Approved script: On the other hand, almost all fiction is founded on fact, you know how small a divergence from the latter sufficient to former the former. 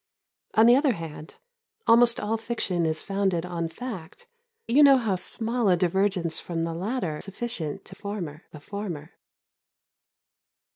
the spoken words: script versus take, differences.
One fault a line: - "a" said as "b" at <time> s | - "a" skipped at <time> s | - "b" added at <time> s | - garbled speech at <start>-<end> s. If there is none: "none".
none